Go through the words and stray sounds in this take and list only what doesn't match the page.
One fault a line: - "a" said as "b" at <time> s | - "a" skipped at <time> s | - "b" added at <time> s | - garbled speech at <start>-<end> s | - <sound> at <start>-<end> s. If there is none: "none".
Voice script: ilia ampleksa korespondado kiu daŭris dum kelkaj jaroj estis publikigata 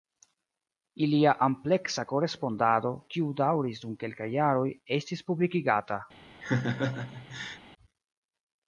- laugh at 6.4-7.6 s